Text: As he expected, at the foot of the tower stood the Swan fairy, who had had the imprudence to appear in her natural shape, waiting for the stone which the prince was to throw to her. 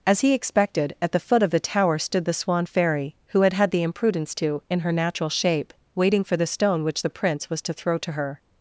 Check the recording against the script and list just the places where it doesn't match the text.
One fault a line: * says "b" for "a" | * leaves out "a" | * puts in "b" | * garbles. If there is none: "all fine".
* leaves out "appear"